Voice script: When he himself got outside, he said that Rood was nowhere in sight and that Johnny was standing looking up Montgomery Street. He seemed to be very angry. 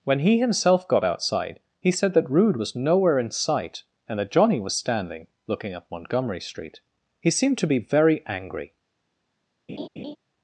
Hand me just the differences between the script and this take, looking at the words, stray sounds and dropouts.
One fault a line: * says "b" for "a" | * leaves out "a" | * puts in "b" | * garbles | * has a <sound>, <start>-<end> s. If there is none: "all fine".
* has a laugh, 9.7-10.2 s